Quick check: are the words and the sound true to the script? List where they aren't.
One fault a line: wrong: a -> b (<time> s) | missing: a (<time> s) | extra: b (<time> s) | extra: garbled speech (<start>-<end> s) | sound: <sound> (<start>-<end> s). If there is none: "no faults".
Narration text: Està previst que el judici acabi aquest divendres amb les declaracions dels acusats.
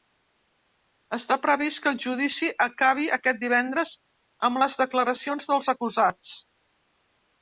no faults